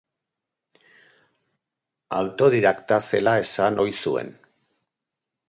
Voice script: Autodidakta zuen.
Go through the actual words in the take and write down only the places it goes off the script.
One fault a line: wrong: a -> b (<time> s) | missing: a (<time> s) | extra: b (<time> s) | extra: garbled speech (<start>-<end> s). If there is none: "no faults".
extra: zela esan ohi (3.1 s)